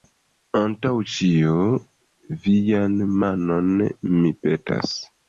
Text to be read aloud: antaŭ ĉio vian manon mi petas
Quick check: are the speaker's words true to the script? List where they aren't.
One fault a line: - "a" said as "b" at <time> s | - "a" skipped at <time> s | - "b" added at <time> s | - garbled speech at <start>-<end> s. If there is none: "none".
none